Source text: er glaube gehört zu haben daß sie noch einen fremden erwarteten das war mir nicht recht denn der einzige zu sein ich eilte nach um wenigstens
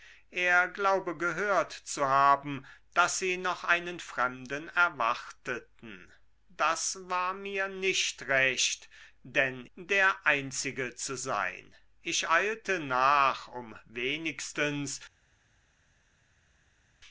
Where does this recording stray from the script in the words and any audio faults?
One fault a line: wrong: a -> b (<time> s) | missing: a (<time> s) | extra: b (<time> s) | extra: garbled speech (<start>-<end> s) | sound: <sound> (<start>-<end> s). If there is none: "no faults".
no faults